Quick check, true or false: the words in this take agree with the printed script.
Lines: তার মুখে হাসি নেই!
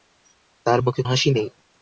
true